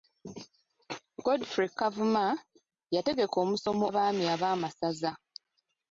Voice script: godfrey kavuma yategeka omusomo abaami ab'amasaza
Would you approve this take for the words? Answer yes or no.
yes